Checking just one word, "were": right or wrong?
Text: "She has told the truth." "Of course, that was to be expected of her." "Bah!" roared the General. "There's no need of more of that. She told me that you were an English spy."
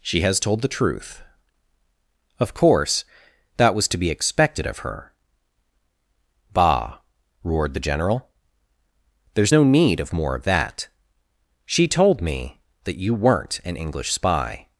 wrong